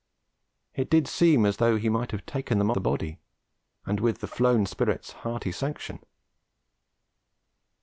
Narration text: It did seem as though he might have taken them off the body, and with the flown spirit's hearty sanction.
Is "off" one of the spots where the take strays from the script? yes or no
yes